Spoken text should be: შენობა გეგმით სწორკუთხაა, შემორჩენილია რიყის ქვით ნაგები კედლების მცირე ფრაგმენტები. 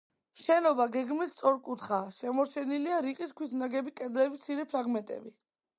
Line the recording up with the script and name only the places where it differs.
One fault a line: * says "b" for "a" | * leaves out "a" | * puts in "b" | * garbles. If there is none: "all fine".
all fine